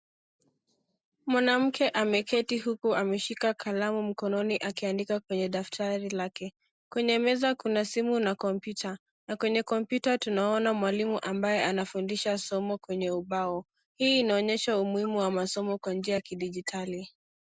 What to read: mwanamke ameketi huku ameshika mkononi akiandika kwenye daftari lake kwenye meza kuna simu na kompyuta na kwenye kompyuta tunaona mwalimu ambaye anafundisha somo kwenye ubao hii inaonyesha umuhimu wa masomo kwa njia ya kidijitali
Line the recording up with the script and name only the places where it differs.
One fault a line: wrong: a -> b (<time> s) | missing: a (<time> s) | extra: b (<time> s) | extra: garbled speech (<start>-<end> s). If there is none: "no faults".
extra: kalamu (3.5 s)